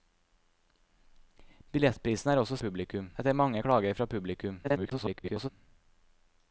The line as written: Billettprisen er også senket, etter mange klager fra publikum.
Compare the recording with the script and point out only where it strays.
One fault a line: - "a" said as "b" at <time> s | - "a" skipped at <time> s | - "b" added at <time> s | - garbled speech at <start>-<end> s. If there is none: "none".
- "senket" said as "publikum" at 2.7 s
- garbled speech at 4.6-5.5 s